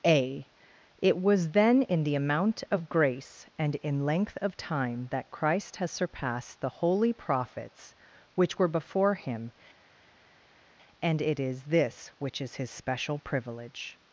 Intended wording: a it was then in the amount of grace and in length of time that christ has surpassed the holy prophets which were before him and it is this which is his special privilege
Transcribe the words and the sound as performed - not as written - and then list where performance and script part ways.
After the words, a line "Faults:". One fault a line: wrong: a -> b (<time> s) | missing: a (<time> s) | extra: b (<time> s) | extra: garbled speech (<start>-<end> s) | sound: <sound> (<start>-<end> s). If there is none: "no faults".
a it was then in the amount of grace and in length of time that christ has surpassed the holy prophets which were before him and it is this which is his special privilege
Faults:
no faults